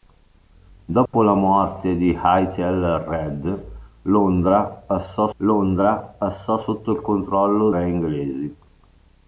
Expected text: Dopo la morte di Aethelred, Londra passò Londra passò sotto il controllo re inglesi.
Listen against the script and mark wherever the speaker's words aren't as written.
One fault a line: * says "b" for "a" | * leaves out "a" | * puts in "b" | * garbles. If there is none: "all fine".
all fine